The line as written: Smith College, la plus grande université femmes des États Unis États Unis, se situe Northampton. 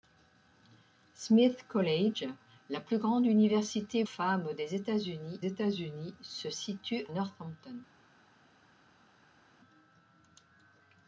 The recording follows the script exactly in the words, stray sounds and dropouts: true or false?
true